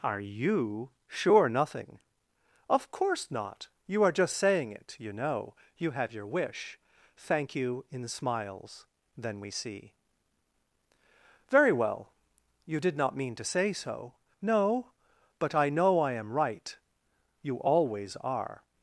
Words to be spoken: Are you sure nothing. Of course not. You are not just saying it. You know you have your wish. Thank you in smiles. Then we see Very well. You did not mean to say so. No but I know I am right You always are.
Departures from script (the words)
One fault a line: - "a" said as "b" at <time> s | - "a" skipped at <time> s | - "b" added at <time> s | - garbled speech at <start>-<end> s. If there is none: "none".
- "not" skipped at 4.1 s